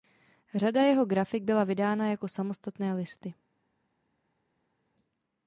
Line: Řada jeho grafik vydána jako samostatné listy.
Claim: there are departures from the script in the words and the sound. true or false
true